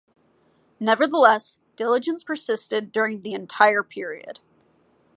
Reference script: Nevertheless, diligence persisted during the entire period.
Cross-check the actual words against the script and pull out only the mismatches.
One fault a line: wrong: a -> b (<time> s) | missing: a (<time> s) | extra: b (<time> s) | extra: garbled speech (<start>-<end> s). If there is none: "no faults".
no faults